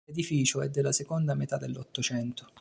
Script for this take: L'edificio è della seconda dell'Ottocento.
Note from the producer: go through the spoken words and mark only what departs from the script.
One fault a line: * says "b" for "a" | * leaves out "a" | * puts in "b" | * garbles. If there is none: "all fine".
* puts in "metà"